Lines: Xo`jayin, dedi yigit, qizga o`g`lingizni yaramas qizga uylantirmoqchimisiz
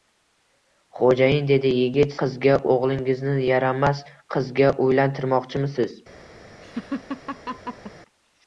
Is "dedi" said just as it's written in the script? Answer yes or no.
yes